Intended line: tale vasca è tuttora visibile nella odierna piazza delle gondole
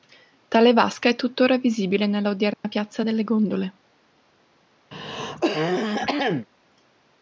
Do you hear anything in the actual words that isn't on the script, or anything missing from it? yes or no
no